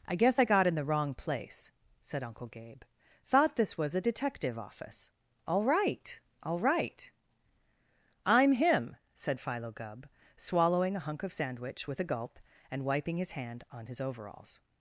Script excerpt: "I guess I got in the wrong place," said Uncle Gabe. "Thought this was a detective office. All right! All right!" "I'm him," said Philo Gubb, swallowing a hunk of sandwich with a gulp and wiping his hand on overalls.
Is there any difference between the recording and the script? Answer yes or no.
yes